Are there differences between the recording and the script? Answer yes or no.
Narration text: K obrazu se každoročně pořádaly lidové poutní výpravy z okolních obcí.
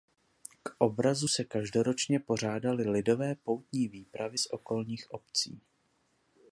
no